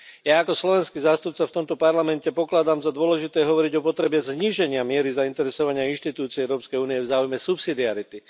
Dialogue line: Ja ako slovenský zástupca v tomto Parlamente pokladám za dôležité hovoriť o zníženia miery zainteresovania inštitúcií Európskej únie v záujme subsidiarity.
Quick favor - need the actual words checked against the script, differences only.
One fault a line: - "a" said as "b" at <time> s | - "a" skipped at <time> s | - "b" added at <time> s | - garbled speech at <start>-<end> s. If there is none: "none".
- "potrebe" added at 3.9 s